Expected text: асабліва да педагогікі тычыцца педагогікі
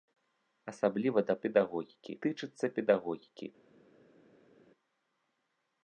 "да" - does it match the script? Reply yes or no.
yes